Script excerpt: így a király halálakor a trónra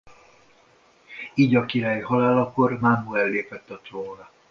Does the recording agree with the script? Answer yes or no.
no